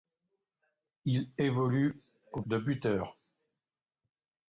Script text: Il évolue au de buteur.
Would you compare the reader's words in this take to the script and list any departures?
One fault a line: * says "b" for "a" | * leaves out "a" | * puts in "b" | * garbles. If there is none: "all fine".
all fine